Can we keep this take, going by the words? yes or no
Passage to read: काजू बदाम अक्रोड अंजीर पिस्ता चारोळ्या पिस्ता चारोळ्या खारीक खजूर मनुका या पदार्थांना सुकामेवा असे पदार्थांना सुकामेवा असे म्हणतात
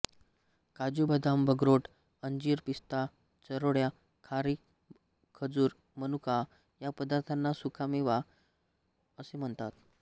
no